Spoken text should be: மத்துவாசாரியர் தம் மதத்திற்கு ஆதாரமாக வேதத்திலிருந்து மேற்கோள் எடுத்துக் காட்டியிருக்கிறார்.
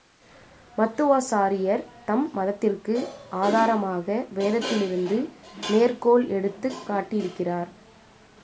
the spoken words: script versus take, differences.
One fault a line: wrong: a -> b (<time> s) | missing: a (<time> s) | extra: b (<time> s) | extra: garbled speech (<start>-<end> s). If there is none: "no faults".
no faults